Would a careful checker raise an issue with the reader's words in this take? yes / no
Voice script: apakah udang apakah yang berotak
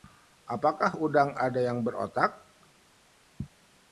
yes